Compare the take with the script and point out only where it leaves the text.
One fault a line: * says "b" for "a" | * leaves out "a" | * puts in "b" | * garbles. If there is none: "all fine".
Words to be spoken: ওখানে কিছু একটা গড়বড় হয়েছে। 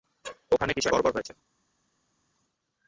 * leaves out "একটা"